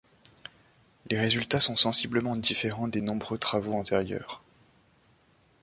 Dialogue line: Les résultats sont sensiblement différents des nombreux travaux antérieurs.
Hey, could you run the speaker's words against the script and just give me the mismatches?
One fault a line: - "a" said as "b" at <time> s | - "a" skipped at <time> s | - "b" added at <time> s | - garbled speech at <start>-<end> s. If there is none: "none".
none